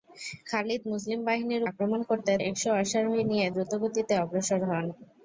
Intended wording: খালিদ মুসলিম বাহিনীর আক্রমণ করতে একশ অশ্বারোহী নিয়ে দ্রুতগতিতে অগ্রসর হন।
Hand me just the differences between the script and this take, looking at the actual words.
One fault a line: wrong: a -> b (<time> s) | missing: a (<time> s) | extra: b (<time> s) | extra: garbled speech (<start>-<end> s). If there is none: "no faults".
no faults